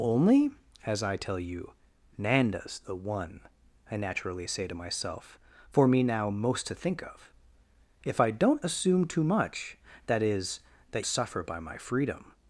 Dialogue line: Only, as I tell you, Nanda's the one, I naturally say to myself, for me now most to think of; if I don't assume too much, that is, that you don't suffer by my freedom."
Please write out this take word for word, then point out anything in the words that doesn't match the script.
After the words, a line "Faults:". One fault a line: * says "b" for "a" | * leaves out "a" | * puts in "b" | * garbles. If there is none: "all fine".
Only, as I tell you, Nanda's the one, I naturally say to myself, for me now most to think of; if I don't assume too much, that is, that suffer by my freedom."
Faults:
* leaves out "you don't"